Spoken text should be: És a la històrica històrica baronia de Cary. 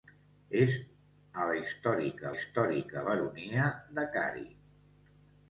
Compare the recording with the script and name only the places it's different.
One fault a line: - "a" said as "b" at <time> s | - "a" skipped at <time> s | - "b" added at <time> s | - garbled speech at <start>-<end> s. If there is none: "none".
none